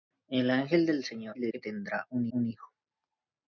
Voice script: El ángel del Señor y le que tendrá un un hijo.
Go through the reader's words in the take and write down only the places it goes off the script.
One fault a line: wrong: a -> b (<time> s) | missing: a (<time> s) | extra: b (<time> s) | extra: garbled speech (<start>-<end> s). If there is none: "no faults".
no faults